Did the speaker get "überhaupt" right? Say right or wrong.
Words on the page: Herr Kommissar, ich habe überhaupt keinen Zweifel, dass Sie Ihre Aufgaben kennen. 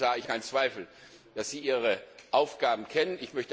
wrong